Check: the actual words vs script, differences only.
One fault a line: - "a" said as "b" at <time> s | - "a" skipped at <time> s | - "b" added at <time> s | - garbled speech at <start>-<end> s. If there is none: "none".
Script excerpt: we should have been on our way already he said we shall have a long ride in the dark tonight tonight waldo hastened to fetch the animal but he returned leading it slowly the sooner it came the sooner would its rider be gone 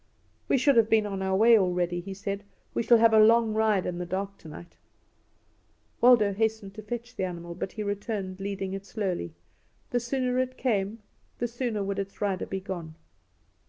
- "tonight" skipped at 4.8 s